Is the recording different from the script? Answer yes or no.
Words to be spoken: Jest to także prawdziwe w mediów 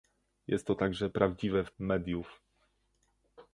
no